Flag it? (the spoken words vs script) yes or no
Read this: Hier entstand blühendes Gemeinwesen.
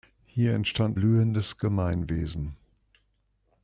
no